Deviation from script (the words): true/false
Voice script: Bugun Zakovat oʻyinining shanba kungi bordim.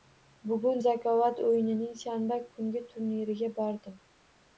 true